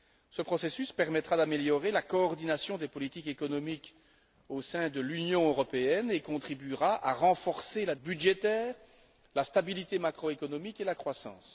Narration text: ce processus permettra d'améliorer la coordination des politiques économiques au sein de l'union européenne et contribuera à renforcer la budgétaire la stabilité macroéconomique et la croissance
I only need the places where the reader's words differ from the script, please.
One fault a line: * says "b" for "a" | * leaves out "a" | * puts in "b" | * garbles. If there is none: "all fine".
all fine